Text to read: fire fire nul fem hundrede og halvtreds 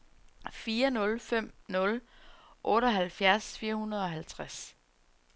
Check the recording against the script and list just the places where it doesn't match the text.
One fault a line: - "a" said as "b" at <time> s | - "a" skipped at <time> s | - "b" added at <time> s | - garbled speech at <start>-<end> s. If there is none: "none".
- "fire" said as "nul fem" at 0.9 s
- "fem" said as "otteoghalvfjerds fire" at 2.6 s